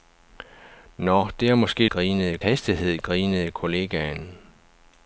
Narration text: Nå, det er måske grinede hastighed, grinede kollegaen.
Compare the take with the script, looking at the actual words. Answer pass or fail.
pass